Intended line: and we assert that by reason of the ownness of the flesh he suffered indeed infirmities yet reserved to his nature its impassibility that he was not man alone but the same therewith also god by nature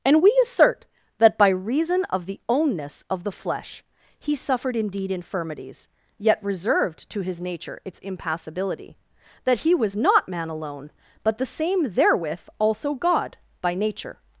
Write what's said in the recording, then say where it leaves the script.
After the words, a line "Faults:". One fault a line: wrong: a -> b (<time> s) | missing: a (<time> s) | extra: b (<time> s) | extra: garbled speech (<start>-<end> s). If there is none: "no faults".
and we assert that by reason of the ownness of the flesh he suffered indeed infirmities yet reserved to his nature its impassibility that he was not man alone but the same therewith also god by nature
Faults:
no faults